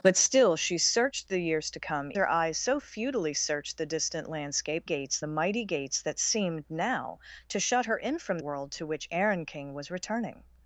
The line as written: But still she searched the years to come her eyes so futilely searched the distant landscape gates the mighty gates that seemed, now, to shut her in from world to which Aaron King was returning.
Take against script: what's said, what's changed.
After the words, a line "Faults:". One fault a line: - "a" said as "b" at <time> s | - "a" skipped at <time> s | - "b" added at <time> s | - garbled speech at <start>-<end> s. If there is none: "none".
But still she searched the years to come her eyes so futilely searched the distant landscape gates the mighty gates that seemed, now, to shut her in from world to which Aaron King was returning.
Faults:
none